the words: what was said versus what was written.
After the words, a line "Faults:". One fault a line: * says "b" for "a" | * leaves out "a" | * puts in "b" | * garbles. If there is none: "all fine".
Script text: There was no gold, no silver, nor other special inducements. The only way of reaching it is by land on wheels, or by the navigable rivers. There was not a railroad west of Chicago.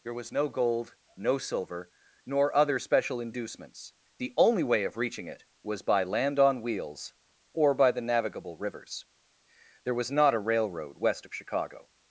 There was no gold, no silver, nor other special inducements. The only way of reaching it was by land on wheels, or by the navigable rivers. There was not a railroad west of Chicago.
Faults:
* says "was" for "is"